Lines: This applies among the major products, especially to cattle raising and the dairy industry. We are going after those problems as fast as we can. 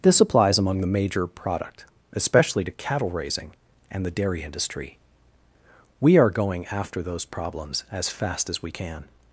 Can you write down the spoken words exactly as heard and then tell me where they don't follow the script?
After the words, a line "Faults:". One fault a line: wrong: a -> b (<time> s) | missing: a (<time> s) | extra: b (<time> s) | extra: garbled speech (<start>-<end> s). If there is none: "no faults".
This applies among the major product, especially to cattle raising and the dairy industry. We are going after those problems as fast as we can.
Faults:
wrong: products -> product (1.3 s)